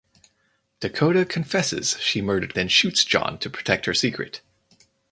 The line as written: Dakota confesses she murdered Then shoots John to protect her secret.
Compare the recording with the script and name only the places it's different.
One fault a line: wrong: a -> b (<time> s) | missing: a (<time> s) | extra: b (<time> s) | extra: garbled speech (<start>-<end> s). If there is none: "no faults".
no faults